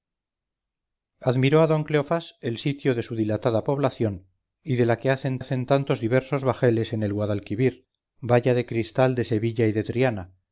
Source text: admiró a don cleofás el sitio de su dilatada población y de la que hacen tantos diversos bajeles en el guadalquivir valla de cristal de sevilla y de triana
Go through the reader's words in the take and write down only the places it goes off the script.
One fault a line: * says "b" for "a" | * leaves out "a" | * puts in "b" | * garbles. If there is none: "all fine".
* puts in "hacen"